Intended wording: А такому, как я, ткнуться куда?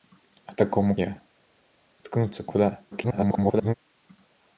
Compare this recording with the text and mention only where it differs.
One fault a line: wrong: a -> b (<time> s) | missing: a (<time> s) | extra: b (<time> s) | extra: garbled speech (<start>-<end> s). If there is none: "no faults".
missing: как (0.9 s)
extra: garbled speech (2.9-3.7 s)